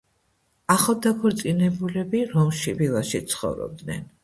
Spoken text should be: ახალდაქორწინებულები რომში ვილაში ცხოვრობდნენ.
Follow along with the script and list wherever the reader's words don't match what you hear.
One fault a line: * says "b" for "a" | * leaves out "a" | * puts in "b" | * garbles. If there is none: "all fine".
all fine